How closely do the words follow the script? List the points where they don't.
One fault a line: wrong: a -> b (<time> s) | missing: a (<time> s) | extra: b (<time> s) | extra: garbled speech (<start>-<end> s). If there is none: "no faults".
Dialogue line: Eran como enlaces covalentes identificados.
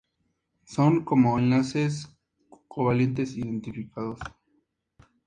wrong: Eran -> Son (0.7 s)